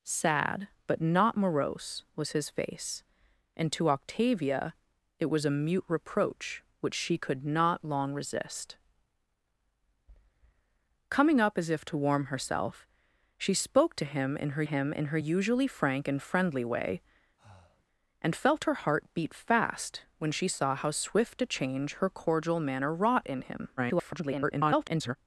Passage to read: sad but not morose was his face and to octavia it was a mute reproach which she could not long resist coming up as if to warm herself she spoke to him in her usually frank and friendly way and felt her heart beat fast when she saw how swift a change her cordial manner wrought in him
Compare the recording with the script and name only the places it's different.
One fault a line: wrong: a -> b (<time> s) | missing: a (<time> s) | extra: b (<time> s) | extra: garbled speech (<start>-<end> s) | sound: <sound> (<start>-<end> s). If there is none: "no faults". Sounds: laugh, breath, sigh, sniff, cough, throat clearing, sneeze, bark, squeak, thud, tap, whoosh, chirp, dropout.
extra: him in her (14.6 s)
sound: breath (17.4-17.9 s)
extra: garbled speech (23.8-25.2 s)